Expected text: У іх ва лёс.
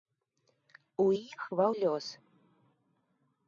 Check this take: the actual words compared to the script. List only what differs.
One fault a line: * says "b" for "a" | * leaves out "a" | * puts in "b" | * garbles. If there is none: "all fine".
all fine